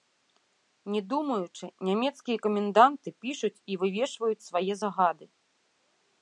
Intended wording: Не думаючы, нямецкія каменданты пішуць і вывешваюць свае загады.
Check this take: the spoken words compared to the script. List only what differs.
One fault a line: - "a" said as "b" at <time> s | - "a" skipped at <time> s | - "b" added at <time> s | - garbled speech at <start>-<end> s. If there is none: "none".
none